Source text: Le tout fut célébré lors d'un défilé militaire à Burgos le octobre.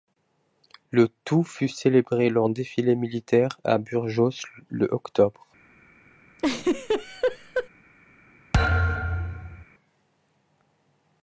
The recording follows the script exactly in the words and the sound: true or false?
false